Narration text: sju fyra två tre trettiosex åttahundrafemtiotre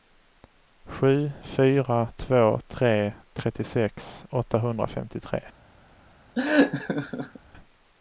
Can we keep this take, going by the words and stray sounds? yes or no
no